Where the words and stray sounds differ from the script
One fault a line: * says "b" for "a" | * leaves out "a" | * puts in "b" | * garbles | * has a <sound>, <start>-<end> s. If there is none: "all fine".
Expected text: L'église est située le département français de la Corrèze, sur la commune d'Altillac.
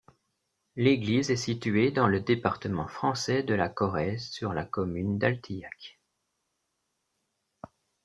* puts in "dans"